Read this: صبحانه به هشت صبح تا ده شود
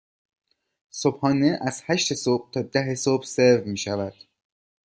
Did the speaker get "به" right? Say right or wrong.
wrong